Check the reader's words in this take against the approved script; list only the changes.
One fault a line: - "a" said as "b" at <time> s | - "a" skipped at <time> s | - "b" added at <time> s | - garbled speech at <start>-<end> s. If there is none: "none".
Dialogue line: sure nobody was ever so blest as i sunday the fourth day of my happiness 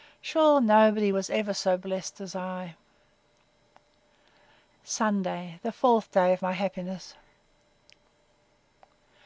none